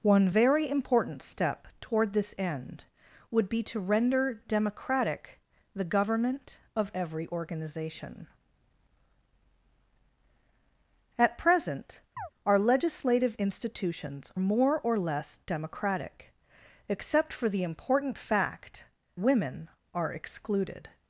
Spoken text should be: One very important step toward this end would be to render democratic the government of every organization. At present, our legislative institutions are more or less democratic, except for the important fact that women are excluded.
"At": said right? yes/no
yes